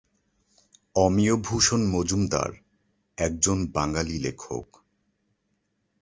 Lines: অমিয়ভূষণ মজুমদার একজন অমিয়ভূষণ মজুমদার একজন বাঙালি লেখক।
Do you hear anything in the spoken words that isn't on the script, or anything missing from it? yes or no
yes